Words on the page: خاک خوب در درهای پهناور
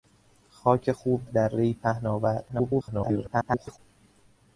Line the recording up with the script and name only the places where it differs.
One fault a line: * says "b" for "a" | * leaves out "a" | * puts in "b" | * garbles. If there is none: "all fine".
* leaves out "در"
* garbles